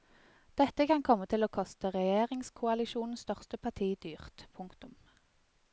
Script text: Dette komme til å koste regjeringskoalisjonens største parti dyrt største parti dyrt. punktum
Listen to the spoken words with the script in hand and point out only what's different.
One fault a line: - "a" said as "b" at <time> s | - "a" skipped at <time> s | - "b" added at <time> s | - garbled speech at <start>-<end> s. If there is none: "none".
- "kan" added at 0.9 s
- "største parti dyrt" skipped at 4.5 s